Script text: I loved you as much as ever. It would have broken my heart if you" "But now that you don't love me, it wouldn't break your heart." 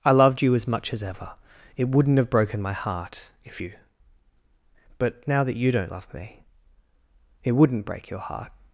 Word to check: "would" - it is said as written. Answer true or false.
false